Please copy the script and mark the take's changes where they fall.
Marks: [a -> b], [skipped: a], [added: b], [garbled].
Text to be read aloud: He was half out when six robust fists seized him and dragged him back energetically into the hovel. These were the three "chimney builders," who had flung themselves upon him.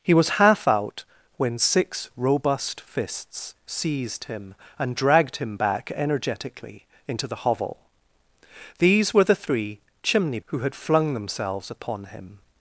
He was half out when six robust fists seized him and dragged him back energetically into the hovel. These were the three "chimney [skipped: builders,"] who had flung themselves upon him.